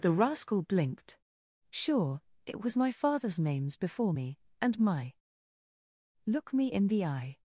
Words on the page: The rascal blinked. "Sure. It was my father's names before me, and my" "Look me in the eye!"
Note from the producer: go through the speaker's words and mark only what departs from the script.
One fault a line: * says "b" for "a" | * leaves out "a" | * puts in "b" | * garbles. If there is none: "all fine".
all fine